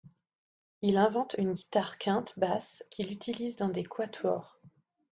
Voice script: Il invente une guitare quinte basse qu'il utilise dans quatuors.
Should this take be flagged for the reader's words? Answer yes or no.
yes